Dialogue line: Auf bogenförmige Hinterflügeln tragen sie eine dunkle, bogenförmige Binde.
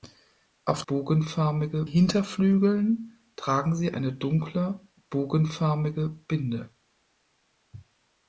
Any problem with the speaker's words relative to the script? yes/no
no